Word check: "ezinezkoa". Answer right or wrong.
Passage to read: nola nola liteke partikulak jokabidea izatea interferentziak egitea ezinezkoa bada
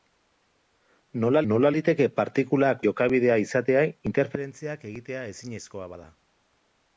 right